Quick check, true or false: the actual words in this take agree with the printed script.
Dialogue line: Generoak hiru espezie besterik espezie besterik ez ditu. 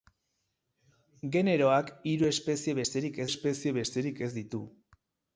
true